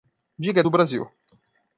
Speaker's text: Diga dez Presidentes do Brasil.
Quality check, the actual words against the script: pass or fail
fail